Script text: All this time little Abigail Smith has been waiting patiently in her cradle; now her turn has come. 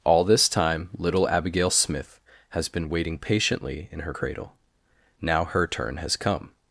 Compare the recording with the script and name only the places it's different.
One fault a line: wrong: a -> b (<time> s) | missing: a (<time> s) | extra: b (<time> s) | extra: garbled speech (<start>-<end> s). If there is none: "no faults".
no faults